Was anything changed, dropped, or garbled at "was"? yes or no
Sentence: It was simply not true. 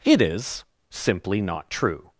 yes